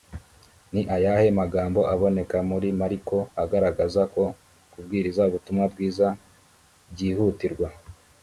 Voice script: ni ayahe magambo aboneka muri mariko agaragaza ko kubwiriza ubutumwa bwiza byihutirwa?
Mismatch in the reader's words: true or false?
false